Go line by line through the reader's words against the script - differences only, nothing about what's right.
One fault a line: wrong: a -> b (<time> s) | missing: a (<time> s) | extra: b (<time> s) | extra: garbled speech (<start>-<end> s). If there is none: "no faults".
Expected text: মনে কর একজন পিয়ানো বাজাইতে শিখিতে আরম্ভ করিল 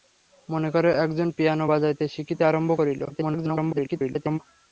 extra: garbled speech (3.1-4.4 s)